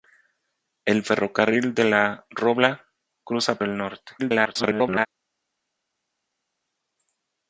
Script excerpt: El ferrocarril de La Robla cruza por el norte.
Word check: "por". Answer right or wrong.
wrong